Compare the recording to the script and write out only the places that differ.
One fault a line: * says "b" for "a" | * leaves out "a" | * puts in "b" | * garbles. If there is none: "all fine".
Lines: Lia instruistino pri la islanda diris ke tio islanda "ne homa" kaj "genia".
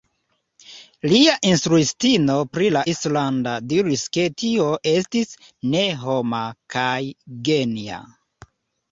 * says "estis" for "islanda"